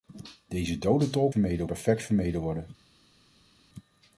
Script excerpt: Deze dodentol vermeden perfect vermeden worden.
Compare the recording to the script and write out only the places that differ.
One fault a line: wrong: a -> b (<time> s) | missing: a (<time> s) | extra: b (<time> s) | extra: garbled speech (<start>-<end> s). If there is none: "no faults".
no faults